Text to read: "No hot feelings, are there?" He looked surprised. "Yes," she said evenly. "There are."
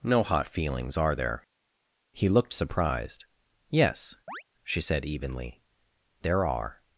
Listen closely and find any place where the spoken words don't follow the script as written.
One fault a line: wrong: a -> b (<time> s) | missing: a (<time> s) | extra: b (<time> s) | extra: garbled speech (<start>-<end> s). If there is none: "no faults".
no faults